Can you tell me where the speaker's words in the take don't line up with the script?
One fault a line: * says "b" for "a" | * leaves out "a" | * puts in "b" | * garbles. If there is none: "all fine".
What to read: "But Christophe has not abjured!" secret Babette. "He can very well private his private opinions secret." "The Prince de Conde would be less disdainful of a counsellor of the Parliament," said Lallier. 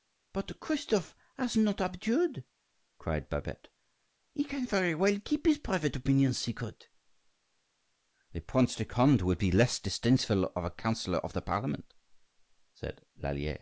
* says "cried" for "secret"
* says "keep" for "private"